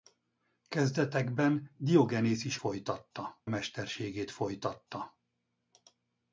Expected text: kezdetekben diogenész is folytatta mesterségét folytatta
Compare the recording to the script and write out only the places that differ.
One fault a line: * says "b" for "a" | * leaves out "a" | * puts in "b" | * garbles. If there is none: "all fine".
all fine